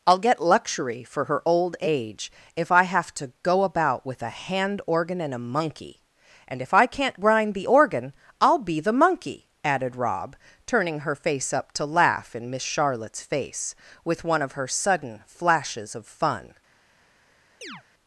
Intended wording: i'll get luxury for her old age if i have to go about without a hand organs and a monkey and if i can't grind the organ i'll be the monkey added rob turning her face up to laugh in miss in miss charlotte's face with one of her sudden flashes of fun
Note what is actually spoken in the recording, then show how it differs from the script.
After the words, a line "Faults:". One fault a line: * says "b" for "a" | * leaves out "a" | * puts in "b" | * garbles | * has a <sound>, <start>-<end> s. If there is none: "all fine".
i'll get luxury for her old age if i have to go about with a hand organ and a monkey and if i can't grind the organ i'll be the monkey added rob turning her face up to laugh in miss charlotte's face with one of her sudden flashes of fun
Faults:
* says "with" for "without"
* says "organ" for "organs"
* leaves out "in miss"
* has a chirp, 17.6-17.8 s